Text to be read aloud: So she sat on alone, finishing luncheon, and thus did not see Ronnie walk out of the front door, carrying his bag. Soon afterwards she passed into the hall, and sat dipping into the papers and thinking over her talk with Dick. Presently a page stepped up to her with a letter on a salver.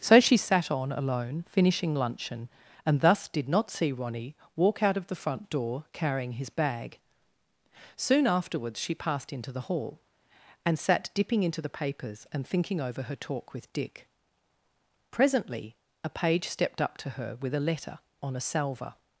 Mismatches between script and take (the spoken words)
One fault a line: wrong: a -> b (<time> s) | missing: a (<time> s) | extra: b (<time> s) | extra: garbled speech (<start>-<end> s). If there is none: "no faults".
no faults